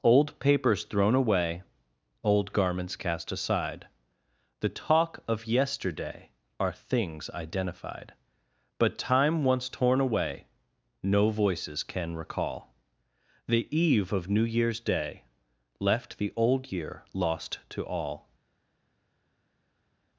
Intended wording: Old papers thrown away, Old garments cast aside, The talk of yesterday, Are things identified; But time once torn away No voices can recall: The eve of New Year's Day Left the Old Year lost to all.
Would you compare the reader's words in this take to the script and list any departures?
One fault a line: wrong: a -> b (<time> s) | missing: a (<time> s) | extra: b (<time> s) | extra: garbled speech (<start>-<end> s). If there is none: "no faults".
no faults